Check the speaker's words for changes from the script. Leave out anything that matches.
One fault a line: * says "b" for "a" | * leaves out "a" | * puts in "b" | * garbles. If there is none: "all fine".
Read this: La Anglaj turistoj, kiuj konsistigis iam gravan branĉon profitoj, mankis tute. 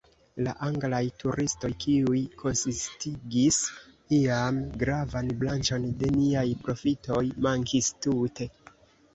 * puts in "de niaj"